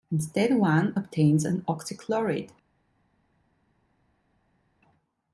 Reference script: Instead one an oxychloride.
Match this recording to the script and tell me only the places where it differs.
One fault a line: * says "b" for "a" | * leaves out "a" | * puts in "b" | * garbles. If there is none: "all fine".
* puts in "obtains"